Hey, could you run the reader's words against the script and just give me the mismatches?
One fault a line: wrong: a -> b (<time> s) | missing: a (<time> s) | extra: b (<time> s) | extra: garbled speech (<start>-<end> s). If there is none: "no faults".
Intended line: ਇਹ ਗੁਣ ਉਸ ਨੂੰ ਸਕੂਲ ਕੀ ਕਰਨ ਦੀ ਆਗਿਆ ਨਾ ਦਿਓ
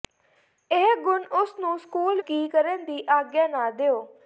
no faults